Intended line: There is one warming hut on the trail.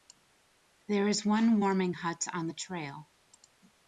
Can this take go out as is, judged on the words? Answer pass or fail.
pass